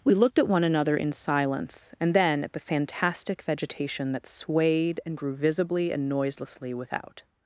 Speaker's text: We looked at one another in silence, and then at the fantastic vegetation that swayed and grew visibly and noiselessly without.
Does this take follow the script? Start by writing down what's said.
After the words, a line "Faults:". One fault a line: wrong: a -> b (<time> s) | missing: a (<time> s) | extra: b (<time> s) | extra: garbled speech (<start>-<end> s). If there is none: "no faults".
We looked at one another in silence, and then at the fantastic vegetation that swayed and grew visibly and noiselessly without.
Faults:
no faults